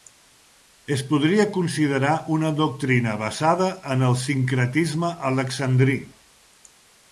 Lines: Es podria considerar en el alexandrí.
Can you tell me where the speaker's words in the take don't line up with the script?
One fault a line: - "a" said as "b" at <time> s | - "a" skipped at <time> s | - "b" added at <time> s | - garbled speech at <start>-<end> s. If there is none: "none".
- "una doctrina basada" added at 2.4 s
- "sincretisme" added at 4.2 s